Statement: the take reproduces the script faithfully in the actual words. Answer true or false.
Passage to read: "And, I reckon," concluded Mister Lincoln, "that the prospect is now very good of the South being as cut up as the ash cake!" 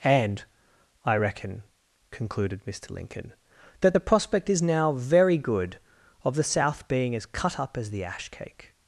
true